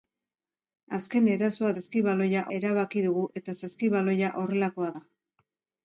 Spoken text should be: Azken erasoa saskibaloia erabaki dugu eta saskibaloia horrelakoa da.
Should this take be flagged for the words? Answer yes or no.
no